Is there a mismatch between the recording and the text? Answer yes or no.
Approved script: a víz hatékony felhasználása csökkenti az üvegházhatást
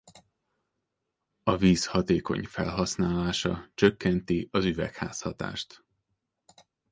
no